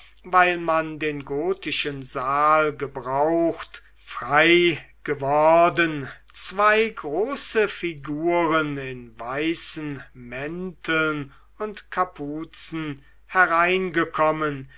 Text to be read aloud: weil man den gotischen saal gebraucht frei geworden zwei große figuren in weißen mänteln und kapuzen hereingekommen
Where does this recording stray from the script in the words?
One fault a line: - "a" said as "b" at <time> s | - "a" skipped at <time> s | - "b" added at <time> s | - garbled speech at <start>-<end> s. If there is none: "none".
none